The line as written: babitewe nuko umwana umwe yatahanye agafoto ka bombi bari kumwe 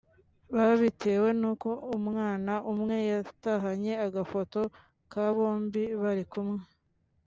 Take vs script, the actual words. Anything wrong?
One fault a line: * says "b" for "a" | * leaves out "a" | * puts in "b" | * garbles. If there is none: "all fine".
all fine